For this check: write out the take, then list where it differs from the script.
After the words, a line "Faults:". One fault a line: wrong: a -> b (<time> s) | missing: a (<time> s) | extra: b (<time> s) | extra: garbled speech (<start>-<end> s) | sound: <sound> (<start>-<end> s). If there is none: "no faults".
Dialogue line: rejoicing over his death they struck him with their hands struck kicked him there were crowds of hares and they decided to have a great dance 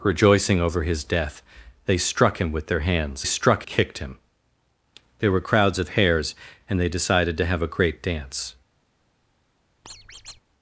rejoicing over his death they struck him with their hands struck kicked him there were crowds of hares and they decided to have a great dance
Faults:
sound: squeak (9.8-10.4 s)